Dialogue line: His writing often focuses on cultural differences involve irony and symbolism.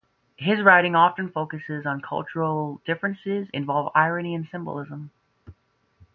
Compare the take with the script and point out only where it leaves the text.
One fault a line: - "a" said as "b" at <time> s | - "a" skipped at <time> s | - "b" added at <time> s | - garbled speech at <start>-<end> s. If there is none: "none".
none